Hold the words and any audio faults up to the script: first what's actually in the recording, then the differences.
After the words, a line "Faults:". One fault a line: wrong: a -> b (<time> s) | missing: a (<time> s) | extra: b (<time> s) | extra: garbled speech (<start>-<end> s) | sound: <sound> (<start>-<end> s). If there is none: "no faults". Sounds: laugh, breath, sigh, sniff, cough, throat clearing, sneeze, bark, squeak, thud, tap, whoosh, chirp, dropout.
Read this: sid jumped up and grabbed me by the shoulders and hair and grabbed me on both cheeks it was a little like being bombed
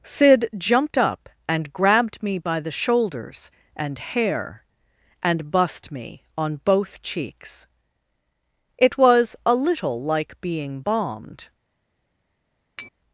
sid jumped up and grabbed me by the shoulders and hair and bussed me on both cheeks it was a little like being bombed
Faults:
wrong: grabbed -> bussed (5.5 s)
sound: tap (12.8-12.9 s)